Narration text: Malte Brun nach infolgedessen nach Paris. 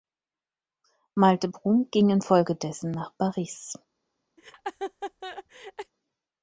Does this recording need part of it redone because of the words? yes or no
yes